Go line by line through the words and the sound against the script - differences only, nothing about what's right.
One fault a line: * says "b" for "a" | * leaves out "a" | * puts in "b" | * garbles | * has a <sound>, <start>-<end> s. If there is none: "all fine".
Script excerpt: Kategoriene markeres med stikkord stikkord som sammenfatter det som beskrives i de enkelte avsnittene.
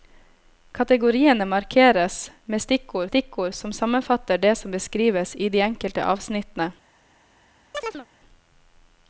* has a chirp, 7.7-8.1 s